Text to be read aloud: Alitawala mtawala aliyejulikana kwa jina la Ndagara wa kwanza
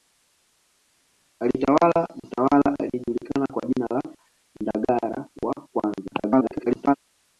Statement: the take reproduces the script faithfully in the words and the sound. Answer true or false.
false